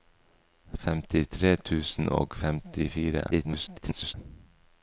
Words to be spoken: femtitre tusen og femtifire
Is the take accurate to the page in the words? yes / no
no